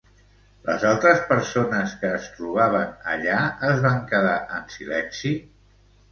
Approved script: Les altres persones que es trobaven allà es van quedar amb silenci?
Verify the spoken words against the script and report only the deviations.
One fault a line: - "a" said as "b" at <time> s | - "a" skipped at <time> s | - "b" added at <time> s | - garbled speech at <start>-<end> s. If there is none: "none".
- "amb" said as "en" at 4.6 s